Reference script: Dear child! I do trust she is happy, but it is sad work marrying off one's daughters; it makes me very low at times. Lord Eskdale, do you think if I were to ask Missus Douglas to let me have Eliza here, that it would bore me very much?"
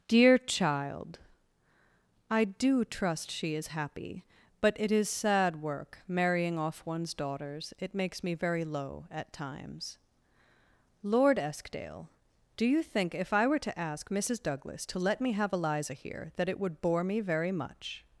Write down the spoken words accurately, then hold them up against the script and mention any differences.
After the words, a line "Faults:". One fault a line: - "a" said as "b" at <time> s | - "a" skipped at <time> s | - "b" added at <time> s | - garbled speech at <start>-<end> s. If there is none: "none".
Dear child! I do trust she is happy, but it is sad work marrying off one's daughters; it makes me very low at times. Lord Eskdale, do you think if I were to ask Missus Douglas to let me have Eliza here, that it would bore me very much?"
Faults:
none